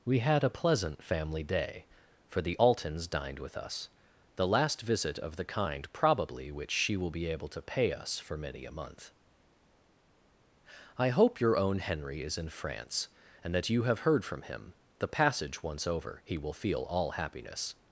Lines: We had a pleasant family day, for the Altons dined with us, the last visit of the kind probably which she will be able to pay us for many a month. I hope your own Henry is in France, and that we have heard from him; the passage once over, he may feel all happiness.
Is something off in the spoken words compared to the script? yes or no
yes